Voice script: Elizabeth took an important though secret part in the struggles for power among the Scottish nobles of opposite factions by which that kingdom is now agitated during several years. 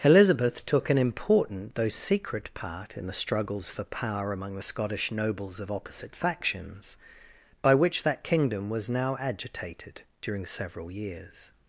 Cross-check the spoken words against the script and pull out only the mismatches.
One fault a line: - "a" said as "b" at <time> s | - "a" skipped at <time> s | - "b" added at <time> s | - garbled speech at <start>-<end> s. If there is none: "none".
- "is" said as "was" at 8.7 s